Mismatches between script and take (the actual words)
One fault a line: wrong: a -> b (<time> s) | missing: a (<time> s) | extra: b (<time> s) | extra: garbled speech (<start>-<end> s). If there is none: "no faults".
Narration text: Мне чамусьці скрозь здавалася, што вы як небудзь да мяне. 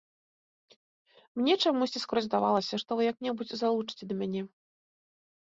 extra: залучыце (3.6 s)